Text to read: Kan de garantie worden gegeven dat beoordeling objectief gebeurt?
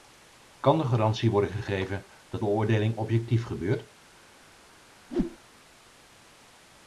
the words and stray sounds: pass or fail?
fail